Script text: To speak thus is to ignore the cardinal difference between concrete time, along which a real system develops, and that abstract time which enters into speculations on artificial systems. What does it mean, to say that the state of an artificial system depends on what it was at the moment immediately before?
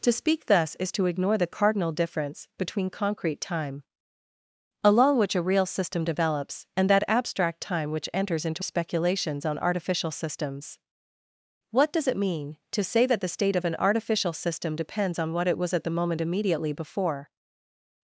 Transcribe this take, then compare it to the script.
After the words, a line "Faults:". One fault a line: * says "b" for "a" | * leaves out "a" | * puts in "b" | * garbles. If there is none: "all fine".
To speak thus is to ignore the cardinal difference between concrete time, along which a real system develops, and that abstract time which enters into speculations on artificial systems. What does it mean, to say that the state of an artificial system depends on what it was at the moment immediately before?
Faults:
all fine